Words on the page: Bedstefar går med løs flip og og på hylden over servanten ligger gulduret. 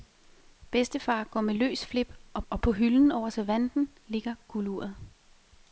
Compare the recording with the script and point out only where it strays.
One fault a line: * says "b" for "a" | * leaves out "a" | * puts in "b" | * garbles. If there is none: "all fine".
all fine